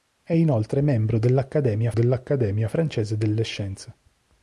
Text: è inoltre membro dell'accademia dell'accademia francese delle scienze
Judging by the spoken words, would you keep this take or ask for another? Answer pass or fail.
pass